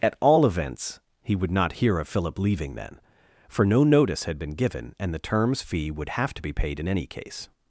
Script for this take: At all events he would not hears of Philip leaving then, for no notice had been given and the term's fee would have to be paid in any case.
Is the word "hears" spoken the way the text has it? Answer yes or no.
no